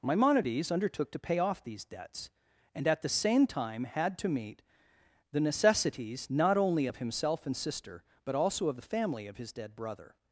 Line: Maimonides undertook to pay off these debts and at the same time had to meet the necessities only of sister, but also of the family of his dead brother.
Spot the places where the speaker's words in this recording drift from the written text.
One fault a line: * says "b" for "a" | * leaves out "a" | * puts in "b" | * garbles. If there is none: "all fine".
* puts in "not"
* puts in "himself and"